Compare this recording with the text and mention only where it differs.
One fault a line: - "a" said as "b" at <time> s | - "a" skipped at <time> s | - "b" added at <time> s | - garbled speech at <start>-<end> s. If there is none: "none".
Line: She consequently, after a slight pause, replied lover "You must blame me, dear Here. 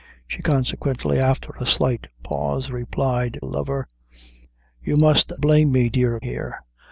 none